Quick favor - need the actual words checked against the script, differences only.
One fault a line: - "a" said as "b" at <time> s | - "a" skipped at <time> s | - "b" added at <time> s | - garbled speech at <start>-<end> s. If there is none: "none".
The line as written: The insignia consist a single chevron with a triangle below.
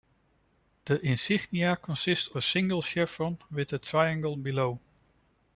none